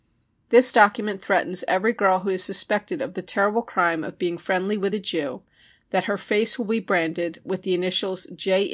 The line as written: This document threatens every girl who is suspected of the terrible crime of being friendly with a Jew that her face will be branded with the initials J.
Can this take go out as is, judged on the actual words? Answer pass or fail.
pass